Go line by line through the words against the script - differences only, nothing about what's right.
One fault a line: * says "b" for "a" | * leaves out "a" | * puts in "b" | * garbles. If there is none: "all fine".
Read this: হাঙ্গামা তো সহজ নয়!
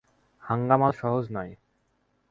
all fine